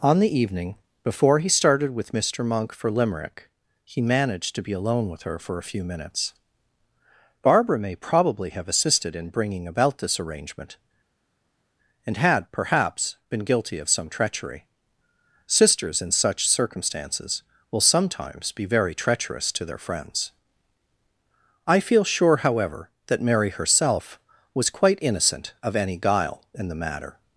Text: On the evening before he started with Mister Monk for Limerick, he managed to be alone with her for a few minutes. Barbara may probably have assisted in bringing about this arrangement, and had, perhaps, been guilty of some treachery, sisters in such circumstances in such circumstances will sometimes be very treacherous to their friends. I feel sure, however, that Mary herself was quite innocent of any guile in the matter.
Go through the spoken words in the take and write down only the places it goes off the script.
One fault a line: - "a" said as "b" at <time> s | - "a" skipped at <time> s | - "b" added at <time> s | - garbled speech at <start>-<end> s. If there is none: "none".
- "in such circumstances" skipped at 17.4 s